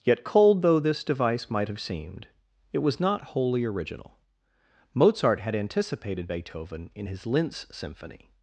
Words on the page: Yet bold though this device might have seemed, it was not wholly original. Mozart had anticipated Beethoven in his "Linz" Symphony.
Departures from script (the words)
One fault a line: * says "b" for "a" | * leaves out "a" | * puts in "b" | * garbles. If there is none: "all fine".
* says "cold" for "bold"